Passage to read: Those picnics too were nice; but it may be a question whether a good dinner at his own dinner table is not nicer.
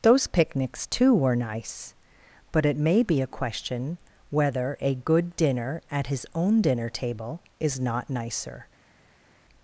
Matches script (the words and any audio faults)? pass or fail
pass